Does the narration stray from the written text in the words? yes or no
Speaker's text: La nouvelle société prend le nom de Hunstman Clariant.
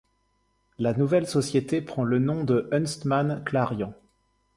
no